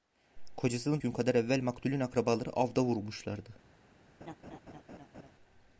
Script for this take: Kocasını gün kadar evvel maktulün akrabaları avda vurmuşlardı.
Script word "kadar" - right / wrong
right